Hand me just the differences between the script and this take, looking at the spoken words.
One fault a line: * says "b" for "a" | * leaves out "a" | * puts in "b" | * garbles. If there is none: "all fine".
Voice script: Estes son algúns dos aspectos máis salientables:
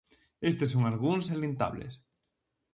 * leaves out "dos aspectos máis"